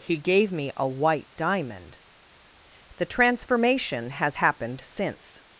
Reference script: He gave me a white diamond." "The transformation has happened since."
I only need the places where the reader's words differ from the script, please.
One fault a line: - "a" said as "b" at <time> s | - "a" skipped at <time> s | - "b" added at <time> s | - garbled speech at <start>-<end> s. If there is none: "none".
none